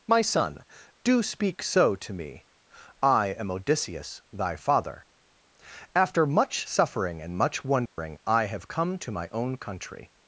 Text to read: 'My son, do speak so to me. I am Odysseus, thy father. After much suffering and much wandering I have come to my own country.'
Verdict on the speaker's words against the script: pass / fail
pass